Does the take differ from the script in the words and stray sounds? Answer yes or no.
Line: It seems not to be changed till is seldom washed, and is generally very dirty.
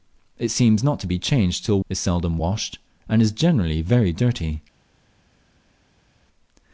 no